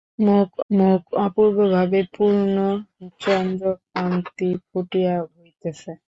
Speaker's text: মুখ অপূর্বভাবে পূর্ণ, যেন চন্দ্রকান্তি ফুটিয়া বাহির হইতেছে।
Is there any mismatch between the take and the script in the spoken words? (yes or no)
yes